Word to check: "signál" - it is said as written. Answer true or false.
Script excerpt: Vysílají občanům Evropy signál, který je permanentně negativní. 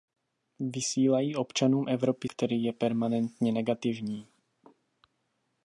false